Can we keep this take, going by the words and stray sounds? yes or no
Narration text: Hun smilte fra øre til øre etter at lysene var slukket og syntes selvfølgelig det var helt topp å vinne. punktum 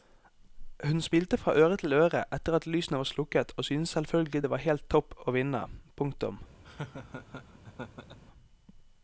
no